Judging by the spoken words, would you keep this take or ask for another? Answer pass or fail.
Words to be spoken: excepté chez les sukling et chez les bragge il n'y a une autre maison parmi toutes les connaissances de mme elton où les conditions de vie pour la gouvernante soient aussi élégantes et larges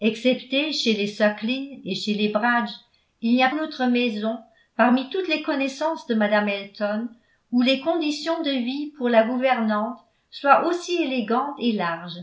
pass